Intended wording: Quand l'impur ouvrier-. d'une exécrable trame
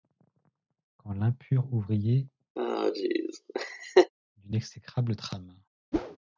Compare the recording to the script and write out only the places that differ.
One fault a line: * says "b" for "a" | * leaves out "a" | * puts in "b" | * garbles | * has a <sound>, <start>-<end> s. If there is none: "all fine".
* has a laugh, 2.6-4.1 s
* has a whoosh, 5.9-6.2 s